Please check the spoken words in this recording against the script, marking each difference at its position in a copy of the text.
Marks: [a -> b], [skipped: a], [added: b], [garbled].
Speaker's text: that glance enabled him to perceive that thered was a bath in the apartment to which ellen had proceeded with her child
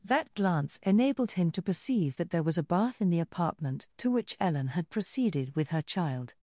that glance enabled him to perceive that [thered -> there] was a bath in the apartment to which ellen had proceeded with her child